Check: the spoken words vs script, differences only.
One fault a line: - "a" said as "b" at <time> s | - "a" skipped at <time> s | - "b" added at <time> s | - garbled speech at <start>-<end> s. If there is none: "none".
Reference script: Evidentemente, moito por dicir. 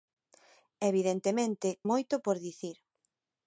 none